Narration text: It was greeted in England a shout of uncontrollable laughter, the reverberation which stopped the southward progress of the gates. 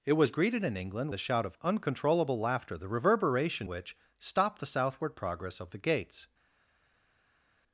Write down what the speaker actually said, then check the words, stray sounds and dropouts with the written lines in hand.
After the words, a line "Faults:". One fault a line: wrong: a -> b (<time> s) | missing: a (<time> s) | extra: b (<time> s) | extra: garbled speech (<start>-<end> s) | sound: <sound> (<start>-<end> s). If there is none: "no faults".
It was greeted in England a shout of uncontrollable laughter, the reverberation which stopped the southward progress of the gates.
Faults:
no faults